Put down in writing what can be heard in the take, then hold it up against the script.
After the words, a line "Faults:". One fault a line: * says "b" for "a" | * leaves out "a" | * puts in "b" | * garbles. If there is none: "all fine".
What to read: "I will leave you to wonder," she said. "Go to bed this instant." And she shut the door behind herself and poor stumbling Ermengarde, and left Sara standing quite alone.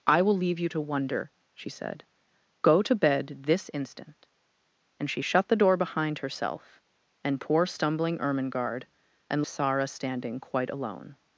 "I will leave you to wonder," she said. "Go to bed this instant." And she shut the door behind herself and poor stumbling Ermengarde, and Sara standing quite alone.
Faults:
* leaves out "left"